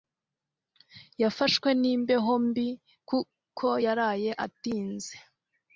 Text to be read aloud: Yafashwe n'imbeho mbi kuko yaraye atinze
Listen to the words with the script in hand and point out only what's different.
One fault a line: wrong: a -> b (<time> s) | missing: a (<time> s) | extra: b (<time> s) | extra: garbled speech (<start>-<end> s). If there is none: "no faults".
no faults